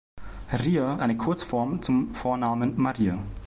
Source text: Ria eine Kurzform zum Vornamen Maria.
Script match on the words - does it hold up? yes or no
yes